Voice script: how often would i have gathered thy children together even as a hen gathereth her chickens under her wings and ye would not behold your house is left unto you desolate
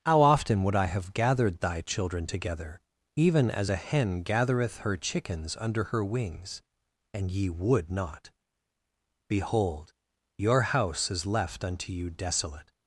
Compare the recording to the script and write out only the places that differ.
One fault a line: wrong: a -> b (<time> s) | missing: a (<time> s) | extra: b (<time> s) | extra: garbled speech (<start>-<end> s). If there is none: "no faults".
no faults